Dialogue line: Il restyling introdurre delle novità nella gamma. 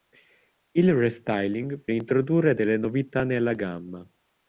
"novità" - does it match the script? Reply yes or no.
yes